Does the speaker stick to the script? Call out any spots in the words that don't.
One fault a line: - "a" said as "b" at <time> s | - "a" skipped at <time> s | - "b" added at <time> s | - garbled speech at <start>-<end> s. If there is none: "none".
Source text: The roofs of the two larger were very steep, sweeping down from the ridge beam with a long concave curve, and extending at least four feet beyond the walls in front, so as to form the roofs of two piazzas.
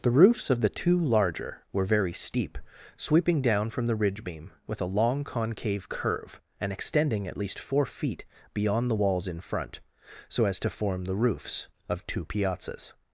none